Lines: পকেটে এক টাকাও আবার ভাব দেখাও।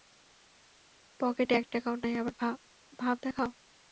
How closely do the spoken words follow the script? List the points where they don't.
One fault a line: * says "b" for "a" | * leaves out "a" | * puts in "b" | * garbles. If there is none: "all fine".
* puts in "নাই"